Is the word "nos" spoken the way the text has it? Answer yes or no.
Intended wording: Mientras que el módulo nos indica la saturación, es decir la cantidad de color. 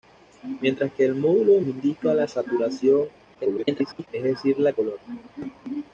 no